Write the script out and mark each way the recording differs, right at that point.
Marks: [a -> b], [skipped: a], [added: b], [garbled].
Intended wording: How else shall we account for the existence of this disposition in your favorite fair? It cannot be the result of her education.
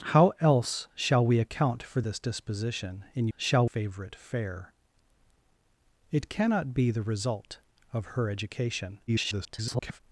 How else shall we account for [skipped: the existence of] this disposition in [your -> shall] favorite fair? It cannot be the result of her education. [garbled]